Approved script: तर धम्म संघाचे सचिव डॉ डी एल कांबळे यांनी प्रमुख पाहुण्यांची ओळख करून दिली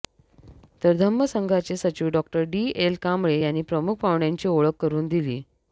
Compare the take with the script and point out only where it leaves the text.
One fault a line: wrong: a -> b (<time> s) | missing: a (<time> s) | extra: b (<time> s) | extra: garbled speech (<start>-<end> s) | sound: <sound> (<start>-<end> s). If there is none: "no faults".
no faults